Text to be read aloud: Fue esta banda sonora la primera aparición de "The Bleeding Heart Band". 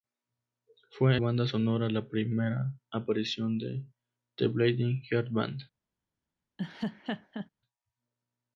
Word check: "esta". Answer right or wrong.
wrong